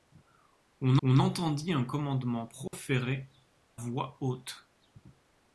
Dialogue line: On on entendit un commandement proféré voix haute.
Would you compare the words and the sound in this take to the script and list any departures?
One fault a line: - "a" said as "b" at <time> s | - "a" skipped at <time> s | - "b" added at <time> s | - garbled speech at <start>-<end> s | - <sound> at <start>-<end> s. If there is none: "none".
- dropout at 2.7-2.7 s